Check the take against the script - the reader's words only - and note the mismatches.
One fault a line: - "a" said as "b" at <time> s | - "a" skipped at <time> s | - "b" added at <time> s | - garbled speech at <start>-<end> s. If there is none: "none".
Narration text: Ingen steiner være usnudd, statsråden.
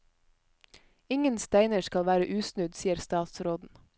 - "skal" added at 1.8 s
- "sier" added at 2.8 s